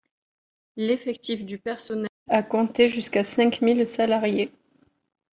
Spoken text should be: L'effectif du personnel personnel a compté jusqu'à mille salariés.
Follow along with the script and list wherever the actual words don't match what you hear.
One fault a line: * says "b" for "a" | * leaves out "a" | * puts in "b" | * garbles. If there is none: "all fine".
* leaves out "personnel"
* puts in "cinq"